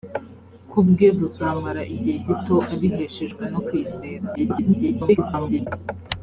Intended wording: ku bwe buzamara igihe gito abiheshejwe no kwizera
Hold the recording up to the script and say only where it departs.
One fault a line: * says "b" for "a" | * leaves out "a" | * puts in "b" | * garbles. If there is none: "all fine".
* garbles